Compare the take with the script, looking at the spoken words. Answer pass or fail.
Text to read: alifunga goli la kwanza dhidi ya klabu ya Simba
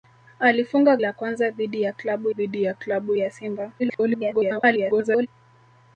fail